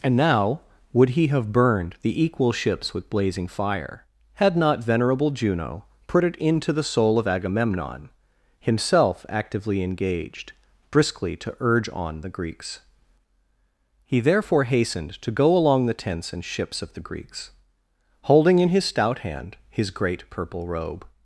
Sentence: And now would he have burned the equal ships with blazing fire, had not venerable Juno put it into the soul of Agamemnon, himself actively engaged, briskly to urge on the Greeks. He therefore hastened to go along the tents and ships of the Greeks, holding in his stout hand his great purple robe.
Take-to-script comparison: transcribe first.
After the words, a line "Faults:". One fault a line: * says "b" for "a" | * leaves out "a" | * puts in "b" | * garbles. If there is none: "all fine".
And now would he have burned the equal ships with blazing fire, had not venerable Juno put it into the soul of Agamemnon, himself actively engaged, briskly to urge on the Greeks. He therefore hastened to go along the tents and ships of the Greeks, holding in his stout hand his great purple robe.
Faults:
all fine